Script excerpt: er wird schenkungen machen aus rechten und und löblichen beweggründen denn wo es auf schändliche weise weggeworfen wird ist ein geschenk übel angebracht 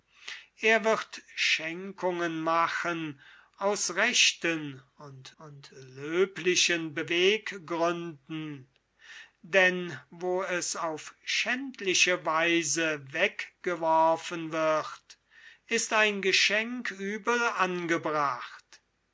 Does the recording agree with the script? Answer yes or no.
yes